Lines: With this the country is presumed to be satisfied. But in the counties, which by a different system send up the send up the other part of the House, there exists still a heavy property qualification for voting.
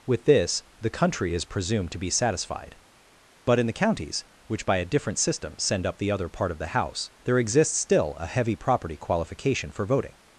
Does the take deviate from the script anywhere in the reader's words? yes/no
yes